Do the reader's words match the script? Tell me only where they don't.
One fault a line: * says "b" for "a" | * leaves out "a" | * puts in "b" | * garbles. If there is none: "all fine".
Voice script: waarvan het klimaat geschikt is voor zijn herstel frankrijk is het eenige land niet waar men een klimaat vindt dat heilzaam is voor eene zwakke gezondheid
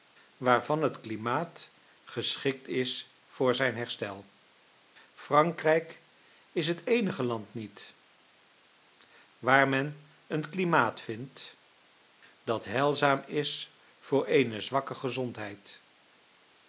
all fine